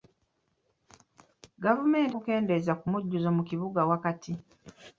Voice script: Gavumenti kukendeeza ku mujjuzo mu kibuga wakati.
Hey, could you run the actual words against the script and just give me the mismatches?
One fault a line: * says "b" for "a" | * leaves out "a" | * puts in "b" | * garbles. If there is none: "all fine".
all fine